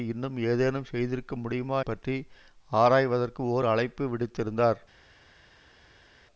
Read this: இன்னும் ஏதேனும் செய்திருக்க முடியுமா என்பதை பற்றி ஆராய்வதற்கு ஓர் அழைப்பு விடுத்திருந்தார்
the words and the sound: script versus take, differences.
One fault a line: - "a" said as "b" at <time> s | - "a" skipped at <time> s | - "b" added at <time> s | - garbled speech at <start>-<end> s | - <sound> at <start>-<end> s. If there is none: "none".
- "என்பதை" skipped at 1.8 s